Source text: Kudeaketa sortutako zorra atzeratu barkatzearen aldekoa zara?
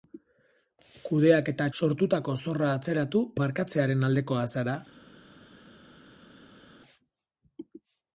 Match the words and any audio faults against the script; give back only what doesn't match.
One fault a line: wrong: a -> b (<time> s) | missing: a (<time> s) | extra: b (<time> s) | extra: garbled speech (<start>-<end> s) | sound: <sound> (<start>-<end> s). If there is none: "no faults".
no faults